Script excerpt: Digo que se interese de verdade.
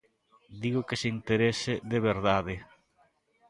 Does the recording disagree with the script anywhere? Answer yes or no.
no